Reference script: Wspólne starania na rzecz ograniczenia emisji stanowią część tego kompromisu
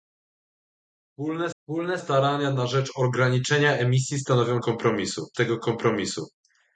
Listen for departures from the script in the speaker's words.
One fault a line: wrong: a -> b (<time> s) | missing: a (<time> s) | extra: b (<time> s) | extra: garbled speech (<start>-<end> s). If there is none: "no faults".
extra: wspólne (1.6 s)
wrong: część -> kompromisu (4.6 s)